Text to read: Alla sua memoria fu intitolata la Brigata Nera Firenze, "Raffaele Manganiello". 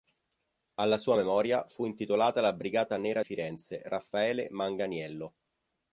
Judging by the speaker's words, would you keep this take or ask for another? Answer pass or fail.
pass